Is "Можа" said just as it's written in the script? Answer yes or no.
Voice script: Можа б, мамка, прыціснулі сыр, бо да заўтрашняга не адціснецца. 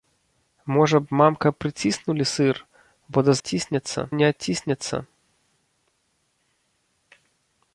yes